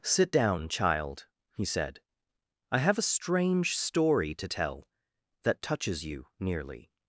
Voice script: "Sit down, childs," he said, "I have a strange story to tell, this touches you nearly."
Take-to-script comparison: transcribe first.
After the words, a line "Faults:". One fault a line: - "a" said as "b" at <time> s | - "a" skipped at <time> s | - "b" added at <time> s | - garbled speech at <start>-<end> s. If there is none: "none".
"Sit down, child," he said, "I have a strange story to tell, that touches you nearly."
Faults:
- "childs" said as "child" at 0.7 s
- "this" said as "that" at 5.4 s